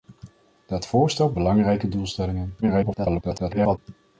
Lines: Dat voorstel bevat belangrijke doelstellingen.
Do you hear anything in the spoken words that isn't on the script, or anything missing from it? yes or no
yes